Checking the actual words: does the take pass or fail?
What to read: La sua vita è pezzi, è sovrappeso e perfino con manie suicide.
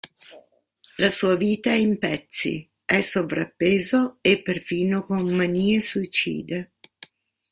fail